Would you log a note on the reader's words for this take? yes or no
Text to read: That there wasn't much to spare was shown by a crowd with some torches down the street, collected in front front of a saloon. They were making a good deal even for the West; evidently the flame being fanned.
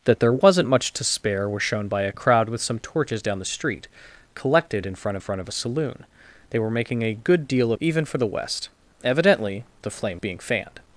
no